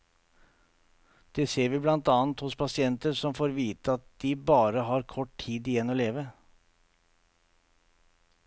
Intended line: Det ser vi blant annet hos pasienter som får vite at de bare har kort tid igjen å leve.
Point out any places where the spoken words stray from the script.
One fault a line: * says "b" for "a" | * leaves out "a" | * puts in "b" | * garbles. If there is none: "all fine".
all fine